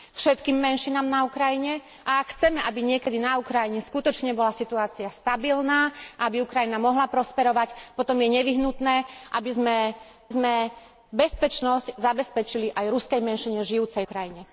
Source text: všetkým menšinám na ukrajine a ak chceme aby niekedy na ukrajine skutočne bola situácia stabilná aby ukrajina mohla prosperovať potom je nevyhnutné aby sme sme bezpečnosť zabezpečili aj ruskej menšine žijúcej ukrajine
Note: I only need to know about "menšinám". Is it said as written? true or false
true